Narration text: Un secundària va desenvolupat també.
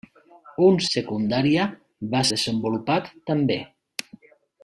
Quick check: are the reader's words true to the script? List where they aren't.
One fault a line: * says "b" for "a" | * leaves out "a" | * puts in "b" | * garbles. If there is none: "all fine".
all fine